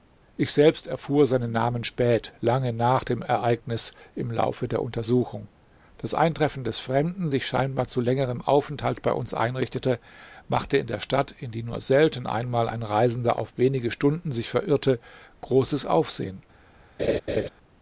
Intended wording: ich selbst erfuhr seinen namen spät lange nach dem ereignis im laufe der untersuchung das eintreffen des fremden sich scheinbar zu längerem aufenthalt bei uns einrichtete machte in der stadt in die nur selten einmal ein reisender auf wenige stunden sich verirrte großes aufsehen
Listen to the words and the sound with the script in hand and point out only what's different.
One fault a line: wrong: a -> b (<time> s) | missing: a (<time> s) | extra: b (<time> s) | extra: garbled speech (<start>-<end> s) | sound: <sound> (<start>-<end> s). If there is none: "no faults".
sound: laugh (17.0-17.5 s)